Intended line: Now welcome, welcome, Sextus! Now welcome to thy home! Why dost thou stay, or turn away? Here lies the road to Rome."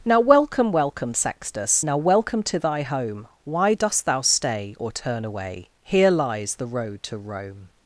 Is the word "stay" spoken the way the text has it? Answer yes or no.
yes